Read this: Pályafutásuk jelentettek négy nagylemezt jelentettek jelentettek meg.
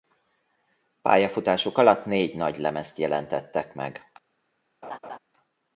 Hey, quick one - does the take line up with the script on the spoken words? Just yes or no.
no